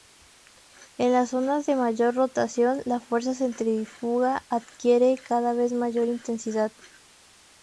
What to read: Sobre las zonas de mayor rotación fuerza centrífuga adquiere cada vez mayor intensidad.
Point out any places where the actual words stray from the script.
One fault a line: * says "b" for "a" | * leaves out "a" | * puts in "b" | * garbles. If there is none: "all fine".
* says "En" for "Sobre"
* puts in "la"